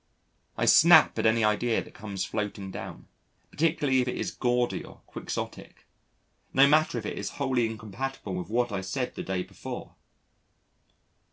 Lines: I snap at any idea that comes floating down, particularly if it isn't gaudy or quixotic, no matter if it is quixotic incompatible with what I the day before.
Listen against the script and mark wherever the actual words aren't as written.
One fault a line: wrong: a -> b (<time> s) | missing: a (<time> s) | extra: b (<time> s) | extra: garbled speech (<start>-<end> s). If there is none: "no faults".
wrong: isn't -> is (4.2 s)
wrong: quixotic -> wholly (7.4 s)
extra: said (8.8 s)